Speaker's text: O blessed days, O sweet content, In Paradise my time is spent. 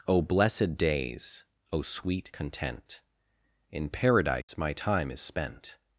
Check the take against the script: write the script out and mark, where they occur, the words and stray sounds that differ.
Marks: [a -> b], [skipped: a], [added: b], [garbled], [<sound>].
O blessed days, O sweet content, In Paradise [dropout] my time is spent.